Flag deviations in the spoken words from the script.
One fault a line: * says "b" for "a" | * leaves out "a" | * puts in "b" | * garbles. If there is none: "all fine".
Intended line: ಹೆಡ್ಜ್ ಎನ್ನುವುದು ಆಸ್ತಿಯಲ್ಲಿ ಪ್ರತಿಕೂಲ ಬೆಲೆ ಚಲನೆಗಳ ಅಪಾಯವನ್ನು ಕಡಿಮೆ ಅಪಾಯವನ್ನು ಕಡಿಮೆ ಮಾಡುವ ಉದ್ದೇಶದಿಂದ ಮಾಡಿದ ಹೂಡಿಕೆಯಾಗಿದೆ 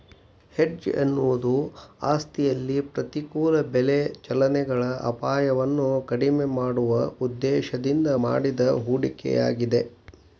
* leaves out "ಅಪಾಯವನ್ನು ಕಡಿಮೆ"